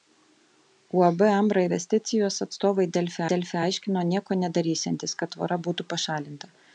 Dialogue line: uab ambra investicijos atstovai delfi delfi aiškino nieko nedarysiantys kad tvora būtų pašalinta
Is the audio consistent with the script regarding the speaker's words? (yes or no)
yes